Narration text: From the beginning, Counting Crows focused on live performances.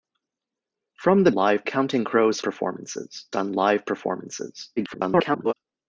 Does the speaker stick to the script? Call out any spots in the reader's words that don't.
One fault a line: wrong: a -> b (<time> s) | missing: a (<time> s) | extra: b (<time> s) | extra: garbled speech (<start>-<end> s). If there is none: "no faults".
wrong: beginning -> live (1.3 s)
wrong: focused -> performances (2.4 s)
extra: garbled speech (4.8-5.5 s)